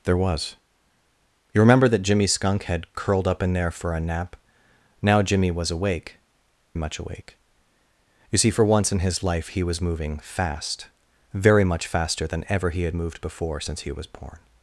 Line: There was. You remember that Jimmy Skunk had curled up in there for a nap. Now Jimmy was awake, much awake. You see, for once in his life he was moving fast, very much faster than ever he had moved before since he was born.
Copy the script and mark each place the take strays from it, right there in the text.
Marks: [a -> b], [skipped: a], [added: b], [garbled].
There was. You remember that Jimmy Skunk had curled up in there for a nap. Now Jimmy was awake, much awake. You see, for once in his life he was moving fast, very much faster than ever he had moved before since he was born.